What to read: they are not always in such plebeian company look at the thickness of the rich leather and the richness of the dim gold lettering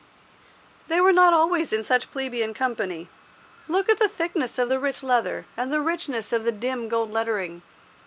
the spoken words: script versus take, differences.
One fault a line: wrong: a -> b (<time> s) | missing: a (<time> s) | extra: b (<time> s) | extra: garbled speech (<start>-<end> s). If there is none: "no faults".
wrong: are -> were (1.0 s)